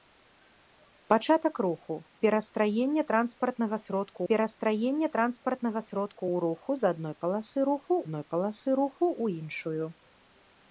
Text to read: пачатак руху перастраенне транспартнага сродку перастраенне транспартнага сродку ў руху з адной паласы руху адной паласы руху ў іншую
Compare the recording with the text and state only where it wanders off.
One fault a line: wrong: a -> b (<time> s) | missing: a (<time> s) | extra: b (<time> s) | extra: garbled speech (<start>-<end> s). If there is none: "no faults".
no faults